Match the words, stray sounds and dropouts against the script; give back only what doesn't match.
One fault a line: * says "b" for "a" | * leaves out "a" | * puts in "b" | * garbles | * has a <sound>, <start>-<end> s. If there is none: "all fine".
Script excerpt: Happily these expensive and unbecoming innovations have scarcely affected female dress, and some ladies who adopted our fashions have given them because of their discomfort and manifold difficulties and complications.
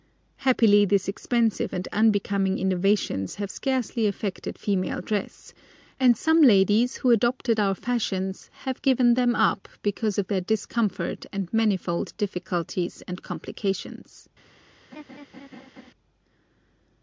* puts in "up"
* has a laugh, 14.9-15.9 s